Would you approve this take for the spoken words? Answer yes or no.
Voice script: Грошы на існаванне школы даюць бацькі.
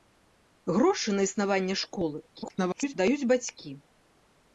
no